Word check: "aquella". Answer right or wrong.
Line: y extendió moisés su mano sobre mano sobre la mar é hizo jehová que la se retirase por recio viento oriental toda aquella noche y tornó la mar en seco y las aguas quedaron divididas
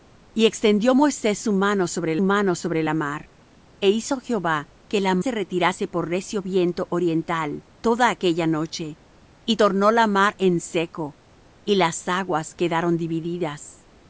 right